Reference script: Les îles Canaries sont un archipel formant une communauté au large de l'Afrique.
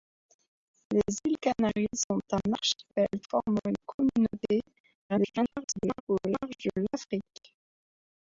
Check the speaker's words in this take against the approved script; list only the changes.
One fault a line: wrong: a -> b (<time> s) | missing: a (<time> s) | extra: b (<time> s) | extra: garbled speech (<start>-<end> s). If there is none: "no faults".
extra: garbled speech (5.1-6.0 s)